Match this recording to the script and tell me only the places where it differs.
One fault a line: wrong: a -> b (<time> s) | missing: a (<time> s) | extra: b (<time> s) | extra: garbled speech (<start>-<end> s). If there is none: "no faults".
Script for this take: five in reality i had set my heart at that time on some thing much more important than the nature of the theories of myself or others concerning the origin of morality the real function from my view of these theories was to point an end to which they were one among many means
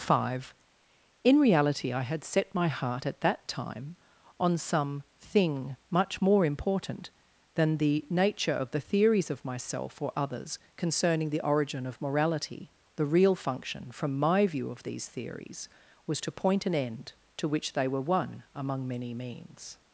no faults